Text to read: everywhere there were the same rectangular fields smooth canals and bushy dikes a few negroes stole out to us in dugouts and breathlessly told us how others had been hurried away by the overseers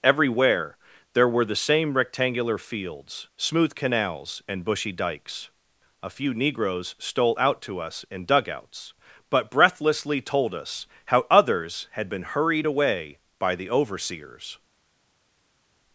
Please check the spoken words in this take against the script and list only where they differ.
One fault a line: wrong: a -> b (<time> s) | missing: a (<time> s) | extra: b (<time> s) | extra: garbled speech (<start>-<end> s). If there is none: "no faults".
wrong: and -> but (9.3 s)